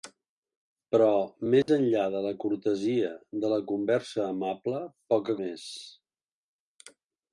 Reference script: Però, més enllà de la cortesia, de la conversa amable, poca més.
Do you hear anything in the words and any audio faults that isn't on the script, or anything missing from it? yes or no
yes